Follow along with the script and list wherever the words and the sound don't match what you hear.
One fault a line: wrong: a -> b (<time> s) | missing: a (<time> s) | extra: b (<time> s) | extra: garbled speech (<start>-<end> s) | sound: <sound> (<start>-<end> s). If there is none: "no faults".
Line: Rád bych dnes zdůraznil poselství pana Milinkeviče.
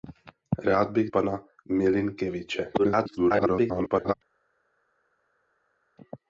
missing: dnes zdůraznil poselství (1.1 s)
extra: garbled speech (2.8-4.1 s)